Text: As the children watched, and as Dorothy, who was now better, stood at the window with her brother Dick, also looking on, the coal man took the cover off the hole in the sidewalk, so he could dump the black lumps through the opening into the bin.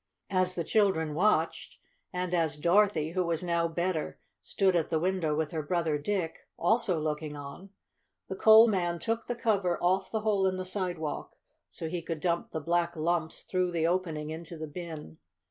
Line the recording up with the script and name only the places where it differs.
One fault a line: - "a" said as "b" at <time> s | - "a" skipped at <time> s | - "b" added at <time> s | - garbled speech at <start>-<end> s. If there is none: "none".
none